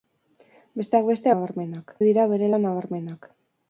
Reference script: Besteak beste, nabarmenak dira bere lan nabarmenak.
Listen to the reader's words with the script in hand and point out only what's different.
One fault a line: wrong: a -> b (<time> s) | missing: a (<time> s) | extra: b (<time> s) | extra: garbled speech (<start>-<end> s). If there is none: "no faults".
no faults